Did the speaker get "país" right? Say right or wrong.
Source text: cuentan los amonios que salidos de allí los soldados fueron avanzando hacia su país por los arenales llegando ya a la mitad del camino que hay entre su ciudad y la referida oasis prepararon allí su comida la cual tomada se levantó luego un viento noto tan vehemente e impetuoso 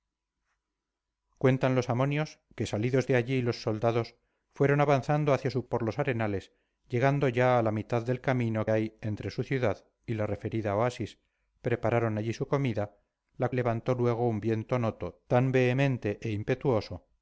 wrong